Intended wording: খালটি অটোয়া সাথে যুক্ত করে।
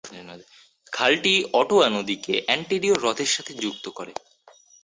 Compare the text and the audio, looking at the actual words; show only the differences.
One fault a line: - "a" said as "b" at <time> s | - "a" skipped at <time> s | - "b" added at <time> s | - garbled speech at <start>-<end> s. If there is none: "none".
- "নদীকে অন্টারিও হ্রদের" added at 1.9 s